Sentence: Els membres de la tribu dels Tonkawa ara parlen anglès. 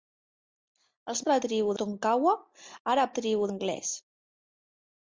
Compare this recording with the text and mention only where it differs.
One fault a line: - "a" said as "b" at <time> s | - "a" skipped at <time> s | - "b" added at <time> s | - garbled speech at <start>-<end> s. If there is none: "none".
- "membres" skipped at 1.2 s
- "dels" skipped at 1.8 s
- "parlen" said as "tribu" at 3.2 s